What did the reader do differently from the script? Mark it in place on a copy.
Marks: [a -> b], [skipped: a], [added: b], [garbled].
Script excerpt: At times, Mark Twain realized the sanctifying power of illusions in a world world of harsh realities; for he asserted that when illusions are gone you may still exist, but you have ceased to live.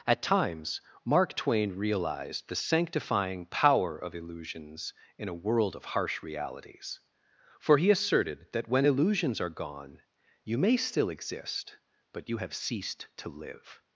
At times, Mark Twain realized the sanctifying power of illusions in a world [skipped: world] of harsh realities; for he asserted that when illusions are gone you may still exist, but you have ceased to live.